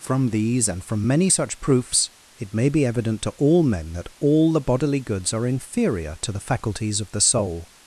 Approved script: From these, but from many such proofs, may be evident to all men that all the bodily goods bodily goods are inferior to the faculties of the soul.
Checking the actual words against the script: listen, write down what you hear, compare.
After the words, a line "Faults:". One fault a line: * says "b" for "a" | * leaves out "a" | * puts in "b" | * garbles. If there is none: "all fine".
From these, and from many such proofs, it may be evident to all men that all the bodily goods are inferior to the faculties of the soul.
Faults:
* says "and" for "but"
* puts in "it"
* leaves out "bodily goods"